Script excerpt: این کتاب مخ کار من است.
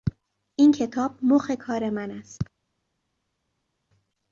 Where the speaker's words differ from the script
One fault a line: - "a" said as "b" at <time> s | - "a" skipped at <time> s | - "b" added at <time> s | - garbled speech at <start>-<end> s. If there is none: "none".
none